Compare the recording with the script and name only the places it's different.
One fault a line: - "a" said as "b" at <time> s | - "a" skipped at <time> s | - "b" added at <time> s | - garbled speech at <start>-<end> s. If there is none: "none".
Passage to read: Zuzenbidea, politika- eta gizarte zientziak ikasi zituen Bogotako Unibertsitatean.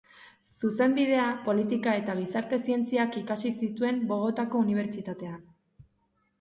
none